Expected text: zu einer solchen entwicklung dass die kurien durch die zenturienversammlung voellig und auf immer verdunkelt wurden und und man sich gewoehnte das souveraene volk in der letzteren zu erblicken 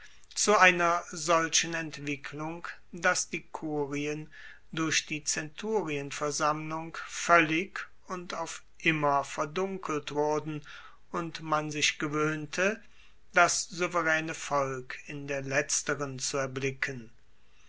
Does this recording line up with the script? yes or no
no